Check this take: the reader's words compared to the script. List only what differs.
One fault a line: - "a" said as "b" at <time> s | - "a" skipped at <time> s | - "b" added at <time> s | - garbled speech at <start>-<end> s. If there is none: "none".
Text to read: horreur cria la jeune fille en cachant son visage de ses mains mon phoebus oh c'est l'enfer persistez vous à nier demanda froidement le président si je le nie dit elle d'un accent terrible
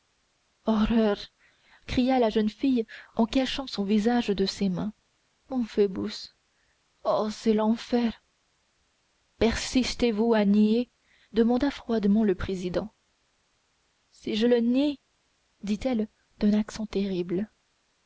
none